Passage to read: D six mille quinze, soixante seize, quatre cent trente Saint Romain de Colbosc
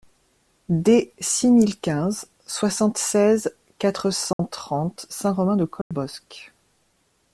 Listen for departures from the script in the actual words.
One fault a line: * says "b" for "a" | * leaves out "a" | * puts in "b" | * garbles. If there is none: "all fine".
all fine